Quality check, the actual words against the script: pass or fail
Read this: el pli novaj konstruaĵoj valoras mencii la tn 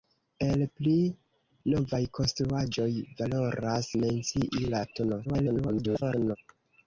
fail